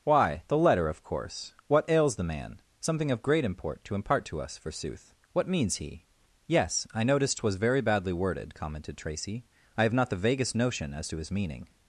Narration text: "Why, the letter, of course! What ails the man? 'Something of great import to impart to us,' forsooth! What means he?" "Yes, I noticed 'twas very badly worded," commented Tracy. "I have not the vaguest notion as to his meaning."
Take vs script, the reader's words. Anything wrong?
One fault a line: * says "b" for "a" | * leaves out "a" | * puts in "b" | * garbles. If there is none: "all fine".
all fine